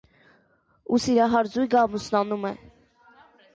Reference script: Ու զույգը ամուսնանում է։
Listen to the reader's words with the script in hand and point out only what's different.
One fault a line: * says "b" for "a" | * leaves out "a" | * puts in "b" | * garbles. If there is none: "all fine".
* puts in "սիրահար"